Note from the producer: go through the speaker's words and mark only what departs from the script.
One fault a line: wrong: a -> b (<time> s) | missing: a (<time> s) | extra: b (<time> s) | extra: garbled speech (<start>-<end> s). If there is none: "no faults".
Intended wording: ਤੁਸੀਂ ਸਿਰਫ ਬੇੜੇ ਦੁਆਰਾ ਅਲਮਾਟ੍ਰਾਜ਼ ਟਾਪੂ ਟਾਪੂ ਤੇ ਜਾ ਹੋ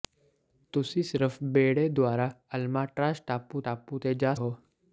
no faults